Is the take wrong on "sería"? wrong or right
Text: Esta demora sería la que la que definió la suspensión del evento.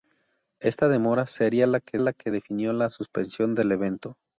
right